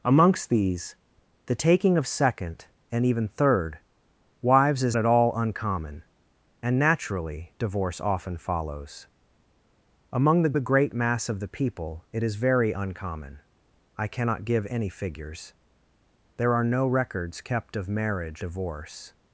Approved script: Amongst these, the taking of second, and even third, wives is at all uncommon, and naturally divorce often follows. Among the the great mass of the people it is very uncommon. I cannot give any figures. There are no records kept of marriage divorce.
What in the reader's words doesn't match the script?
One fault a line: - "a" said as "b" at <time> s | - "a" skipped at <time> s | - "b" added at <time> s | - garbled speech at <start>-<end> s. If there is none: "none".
none